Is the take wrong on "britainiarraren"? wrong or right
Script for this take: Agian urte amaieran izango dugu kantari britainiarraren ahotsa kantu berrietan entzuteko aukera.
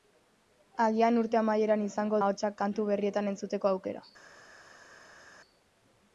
wrong